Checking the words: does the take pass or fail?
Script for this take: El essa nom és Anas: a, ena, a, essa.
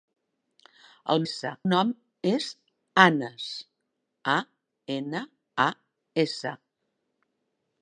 pass